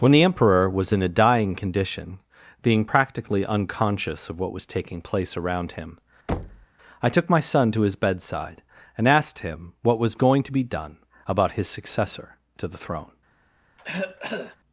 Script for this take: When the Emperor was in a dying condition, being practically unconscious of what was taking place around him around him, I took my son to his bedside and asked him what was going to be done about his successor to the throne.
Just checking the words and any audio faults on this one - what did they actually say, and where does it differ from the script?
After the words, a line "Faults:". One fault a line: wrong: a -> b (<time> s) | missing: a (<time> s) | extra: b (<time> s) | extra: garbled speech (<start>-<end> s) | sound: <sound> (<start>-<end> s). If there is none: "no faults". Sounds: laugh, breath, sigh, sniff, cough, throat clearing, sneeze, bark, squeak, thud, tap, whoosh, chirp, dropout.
When the Emperor was in a dying condition, being practically unconscious of what was taking place around him, I took my son to his bedside and asked him what was going to be done about his successor to the throne.
Faults:
missing: around him (6.0 s)
sound: thud (6.3-6.7 s)
sound: cough (13.8-14.6 s)